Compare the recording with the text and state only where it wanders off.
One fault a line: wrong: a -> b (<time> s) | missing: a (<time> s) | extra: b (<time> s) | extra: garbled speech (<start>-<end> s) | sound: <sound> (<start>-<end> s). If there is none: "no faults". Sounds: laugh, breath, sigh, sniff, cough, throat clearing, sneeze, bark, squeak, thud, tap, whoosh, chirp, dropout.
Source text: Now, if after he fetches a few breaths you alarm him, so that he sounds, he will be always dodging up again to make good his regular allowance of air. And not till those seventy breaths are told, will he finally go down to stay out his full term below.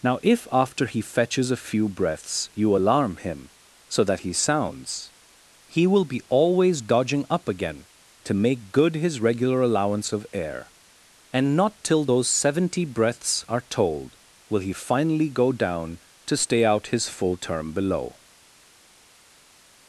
no faults